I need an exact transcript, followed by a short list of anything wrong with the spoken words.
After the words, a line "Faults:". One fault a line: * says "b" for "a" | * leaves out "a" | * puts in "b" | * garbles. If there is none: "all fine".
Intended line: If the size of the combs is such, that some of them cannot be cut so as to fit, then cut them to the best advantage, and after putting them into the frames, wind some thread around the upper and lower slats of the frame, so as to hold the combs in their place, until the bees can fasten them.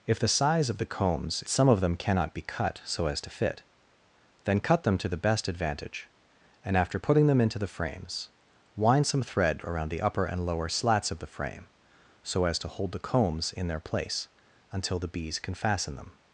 If the size of the combs some of them cannot be cut so as to fit, then cut them to the best advantage, and after putting them into the frames, wind some thread around the upper and lower slats of the frame, so as to hold the combs in their place, until the bees can fasten them.
Faults:
* leaves out "is such that"